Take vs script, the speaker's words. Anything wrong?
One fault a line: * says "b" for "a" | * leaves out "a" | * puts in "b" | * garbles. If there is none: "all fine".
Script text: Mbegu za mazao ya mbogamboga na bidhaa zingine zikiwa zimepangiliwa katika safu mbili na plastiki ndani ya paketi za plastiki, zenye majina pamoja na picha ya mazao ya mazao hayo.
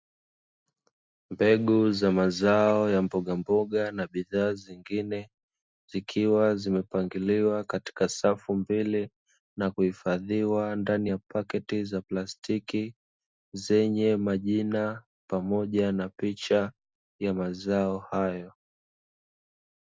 * says "kuhifadhiwa" for "plastiki"
* leaves out "ya mazao"